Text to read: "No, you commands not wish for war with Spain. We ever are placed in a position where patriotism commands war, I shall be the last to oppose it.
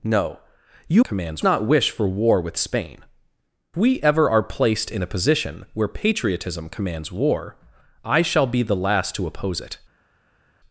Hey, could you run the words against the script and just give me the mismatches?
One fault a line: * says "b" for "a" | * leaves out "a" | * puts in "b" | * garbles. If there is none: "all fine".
all fine